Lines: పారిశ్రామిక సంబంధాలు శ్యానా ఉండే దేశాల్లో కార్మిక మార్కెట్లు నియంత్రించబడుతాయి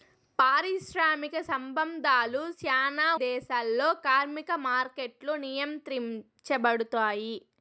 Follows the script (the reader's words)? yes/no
no